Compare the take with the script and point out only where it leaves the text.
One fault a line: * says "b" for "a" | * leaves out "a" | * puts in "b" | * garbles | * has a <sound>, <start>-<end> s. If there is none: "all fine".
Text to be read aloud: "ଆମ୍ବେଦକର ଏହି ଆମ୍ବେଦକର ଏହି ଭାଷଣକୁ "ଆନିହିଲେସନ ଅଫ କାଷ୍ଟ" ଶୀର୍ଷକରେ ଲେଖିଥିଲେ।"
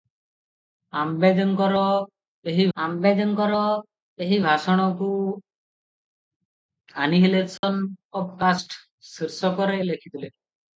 * has a dropout, 7.6-7.6 s